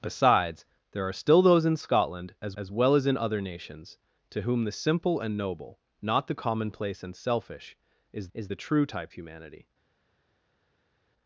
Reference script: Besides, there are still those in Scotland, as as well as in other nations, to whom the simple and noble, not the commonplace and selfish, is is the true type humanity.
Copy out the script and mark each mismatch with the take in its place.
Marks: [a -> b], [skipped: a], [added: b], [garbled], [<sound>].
Besides, there are still those in Scotland, as as well as in other nations, to whom the simple and noble, not the commonplace and selfish, is is the true type humanity.